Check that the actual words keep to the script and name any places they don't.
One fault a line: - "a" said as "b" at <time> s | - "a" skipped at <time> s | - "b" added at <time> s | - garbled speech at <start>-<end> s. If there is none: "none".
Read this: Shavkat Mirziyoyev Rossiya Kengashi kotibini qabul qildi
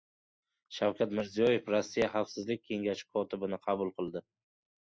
- "Xavfsizlik" added at 2.1 s